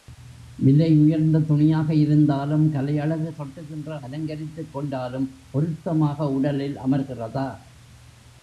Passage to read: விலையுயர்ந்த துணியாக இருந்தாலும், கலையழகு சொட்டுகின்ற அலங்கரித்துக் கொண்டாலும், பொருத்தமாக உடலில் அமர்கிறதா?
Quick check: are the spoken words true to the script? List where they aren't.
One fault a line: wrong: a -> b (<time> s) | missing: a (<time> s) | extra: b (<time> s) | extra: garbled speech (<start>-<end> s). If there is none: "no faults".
no faults